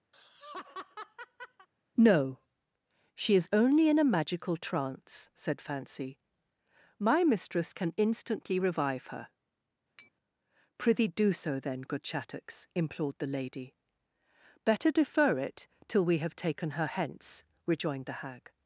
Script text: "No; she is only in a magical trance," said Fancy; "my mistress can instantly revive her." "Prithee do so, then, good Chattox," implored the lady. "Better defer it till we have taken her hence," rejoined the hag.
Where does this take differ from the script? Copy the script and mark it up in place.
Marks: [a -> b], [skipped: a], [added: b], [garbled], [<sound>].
[laugh] "No; she is only in a magical trance," said Fancy; "my mistress can instantly revive her." [tap] "Prithee do so, then, good Chattox," implored the lady. "Better defer it till we have taken her hence," rejoined the hag.